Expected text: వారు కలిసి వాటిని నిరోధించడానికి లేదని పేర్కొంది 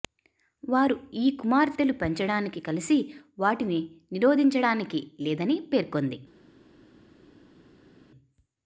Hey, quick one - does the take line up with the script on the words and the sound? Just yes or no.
no